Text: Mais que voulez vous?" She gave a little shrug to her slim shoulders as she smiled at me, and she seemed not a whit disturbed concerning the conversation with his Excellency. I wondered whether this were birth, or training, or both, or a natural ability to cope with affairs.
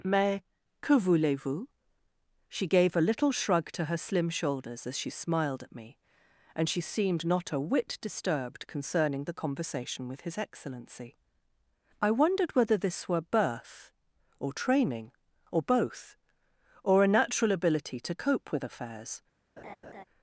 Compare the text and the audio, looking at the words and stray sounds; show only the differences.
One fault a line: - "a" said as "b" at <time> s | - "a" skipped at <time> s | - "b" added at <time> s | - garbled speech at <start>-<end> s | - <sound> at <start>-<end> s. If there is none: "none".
- laugh at 19.6-20.0 s